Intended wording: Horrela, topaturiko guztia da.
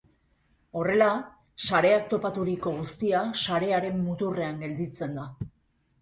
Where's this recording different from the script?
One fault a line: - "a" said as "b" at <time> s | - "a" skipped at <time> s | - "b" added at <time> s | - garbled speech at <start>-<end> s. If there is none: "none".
- "sareak" added at 1.6 s
- "sarearen muturrean gelditzen" added at 3.4 s